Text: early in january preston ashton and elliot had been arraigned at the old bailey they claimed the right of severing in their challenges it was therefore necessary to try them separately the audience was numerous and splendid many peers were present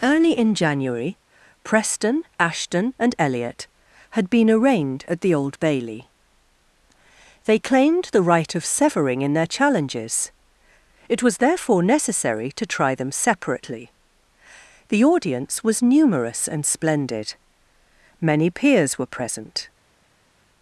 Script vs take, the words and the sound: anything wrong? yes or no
no